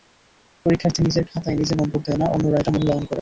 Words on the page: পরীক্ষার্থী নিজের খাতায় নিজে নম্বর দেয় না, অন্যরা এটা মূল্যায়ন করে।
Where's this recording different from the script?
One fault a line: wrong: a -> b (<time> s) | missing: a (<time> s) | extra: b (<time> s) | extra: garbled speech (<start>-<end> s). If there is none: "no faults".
no faults